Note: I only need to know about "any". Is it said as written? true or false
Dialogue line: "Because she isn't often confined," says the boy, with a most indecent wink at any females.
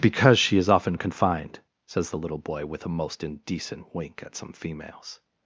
false